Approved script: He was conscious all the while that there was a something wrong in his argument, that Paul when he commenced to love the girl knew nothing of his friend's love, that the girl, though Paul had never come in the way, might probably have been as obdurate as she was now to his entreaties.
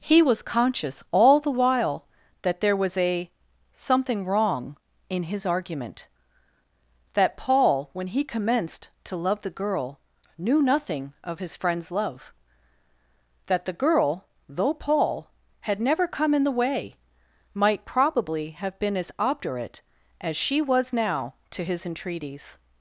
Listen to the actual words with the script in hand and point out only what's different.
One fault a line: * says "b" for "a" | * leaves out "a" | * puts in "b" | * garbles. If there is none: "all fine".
all fine